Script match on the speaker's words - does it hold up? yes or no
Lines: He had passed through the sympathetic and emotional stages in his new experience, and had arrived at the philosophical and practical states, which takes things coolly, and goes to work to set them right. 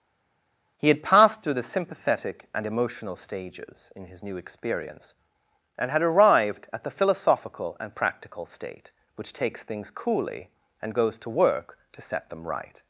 no